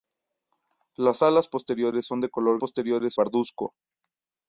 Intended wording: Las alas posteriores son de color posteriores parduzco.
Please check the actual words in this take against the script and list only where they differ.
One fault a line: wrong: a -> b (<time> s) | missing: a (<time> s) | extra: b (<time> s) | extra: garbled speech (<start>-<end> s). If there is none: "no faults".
no faults